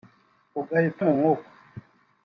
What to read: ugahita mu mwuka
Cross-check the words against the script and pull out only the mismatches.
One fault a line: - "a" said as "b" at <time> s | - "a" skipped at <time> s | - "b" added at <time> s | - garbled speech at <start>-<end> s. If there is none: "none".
none